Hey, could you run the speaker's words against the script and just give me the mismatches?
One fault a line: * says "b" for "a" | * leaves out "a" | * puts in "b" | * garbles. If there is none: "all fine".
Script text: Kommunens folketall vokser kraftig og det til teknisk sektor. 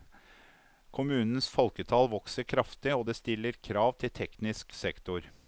* puts in "stiller krav"